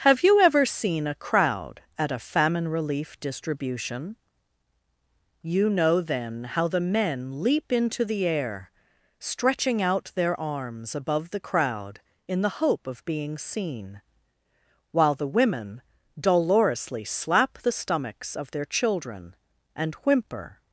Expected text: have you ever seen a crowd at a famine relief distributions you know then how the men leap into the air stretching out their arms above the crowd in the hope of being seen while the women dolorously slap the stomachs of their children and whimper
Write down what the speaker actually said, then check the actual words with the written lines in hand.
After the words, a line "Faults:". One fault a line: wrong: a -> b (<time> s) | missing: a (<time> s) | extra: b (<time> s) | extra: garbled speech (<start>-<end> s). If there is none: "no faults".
have you ever seen a crowd at a famine relief distribution you know then how the men leap into the air stretching out their arms above the crowd in the hope of being seen while the women dolorously slap the stomachs of their children and whimper
Faults:
wrong: distributions -> distribution (3.2 s)